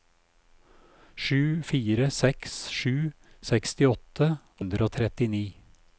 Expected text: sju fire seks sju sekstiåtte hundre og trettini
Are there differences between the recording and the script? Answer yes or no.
no